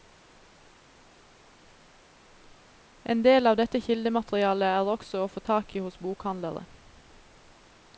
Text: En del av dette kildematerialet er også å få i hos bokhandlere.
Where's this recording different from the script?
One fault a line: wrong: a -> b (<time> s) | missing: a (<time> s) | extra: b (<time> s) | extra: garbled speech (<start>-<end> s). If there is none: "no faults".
extra: tak (5.5 s)